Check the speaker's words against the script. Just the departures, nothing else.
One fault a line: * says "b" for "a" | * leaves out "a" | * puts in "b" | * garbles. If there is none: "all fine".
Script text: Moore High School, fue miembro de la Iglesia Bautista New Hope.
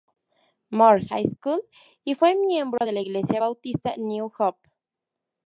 * puts in "y"